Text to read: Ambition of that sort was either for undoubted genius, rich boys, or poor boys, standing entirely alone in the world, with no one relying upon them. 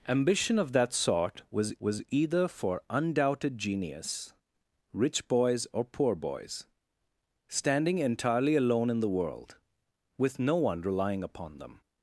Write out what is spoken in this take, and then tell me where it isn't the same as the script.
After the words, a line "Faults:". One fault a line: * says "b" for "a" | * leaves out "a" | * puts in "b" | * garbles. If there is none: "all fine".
Ambition of that sort was was either for undoubted genius, rich boys, or poor boys, standing entirely alone in the world, with no one relying upon them.
Faults:
* puts in "was"